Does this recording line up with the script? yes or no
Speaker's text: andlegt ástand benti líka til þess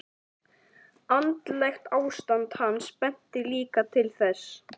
no